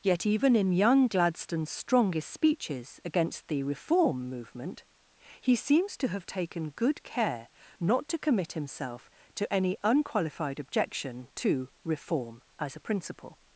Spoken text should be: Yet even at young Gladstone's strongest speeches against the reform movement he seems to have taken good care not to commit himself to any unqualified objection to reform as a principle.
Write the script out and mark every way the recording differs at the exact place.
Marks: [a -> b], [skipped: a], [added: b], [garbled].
Yet even [at -> in] young Gladstone's strongest speeches against the reform movement he seems to have taken good care not to commit himself to any unqualified objection to reform as a principle.